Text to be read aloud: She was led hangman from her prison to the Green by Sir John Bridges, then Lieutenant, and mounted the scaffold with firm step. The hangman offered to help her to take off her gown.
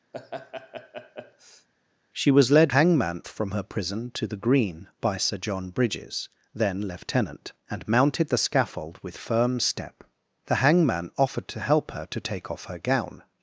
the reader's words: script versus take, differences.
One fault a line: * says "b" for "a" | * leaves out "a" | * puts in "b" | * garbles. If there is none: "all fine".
all fine